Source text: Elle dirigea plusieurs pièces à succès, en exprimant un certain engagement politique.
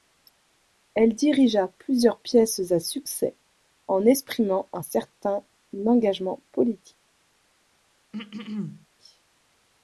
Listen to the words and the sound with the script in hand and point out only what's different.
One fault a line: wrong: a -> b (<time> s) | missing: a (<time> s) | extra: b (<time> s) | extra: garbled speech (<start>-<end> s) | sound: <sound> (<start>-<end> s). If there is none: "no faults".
sound: throat clearing (8.1-8.9 s)